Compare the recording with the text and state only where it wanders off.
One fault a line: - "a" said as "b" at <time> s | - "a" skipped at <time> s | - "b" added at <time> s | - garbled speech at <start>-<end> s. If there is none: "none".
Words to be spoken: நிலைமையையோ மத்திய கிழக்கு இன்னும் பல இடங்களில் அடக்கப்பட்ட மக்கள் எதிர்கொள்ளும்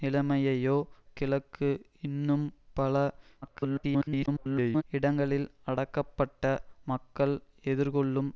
- "மத்திய" skipped at 0.8 s
- garbled speech at 3.4-4.8 s